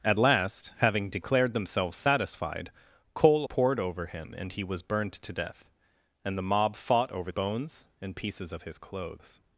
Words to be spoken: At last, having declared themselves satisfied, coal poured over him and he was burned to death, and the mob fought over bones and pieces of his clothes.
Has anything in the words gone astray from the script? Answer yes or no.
no